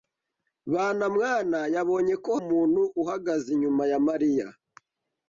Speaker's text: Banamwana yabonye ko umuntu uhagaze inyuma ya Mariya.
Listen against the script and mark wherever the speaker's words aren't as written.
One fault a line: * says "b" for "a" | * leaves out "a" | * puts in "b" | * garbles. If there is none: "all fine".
all fine